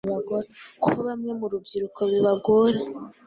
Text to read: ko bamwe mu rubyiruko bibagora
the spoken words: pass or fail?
pass